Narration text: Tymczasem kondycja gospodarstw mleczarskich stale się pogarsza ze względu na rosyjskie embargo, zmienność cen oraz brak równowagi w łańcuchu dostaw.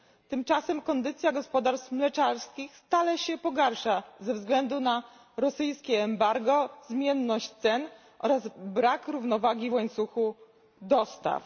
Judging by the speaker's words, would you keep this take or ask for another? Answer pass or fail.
pass